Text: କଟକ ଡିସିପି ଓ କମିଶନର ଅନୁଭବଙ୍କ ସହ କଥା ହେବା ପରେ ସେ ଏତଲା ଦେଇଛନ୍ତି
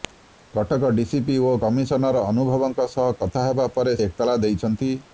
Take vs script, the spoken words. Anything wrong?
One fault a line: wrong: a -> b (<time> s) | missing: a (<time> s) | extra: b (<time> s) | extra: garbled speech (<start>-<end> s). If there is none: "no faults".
missing: ସେ (4.0 s)